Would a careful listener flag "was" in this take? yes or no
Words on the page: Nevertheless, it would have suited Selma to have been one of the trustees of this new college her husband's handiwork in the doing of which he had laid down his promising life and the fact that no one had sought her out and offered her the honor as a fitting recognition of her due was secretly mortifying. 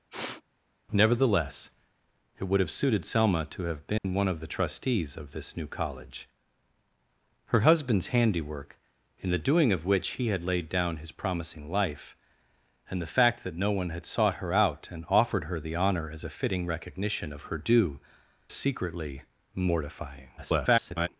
yes